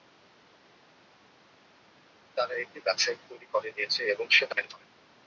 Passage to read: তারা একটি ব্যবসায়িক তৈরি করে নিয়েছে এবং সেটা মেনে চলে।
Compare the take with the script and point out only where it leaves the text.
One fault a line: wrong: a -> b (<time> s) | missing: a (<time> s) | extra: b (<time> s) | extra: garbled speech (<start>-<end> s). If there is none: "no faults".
no faults